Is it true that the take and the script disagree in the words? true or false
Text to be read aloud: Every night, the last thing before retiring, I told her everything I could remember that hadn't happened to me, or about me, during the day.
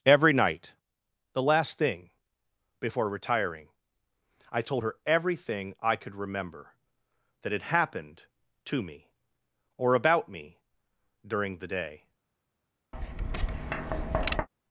true